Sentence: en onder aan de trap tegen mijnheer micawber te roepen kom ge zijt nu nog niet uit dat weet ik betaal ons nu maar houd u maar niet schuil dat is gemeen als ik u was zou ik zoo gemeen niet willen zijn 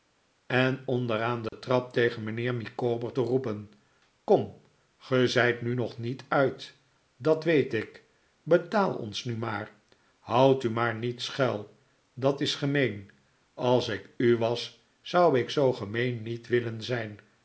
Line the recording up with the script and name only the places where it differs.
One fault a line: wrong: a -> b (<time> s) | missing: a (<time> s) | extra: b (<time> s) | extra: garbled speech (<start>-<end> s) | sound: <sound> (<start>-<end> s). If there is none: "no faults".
sound: dropout (1.5-1.5 s)